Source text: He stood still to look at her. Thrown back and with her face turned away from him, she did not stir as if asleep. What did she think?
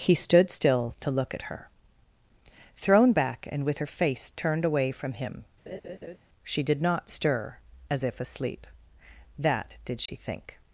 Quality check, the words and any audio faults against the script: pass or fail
fail